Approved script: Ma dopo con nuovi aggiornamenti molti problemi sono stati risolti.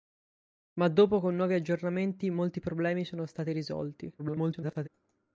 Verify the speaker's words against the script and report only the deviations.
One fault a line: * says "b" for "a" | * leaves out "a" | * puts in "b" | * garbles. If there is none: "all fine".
* garbles